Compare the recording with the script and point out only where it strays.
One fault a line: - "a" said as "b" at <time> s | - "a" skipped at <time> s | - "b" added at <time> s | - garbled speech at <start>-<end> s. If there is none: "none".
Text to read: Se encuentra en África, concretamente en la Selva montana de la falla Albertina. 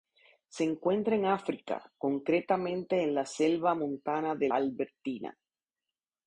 - "la falla" skipped at 4.5 s